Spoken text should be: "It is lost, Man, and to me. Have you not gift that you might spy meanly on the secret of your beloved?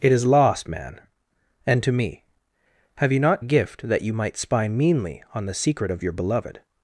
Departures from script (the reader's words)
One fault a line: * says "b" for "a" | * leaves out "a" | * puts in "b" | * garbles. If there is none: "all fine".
all fine